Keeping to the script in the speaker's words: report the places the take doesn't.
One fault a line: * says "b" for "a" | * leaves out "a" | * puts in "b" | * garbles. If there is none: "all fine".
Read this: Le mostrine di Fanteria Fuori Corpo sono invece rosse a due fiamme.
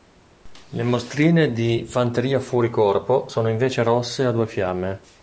all fine